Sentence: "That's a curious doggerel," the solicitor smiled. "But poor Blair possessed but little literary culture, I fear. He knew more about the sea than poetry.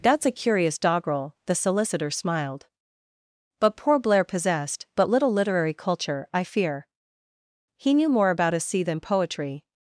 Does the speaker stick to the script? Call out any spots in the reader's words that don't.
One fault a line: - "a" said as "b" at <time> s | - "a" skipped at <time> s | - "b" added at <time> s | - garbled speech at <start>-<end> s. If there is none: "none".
- "the" said as "a" at 8.5 s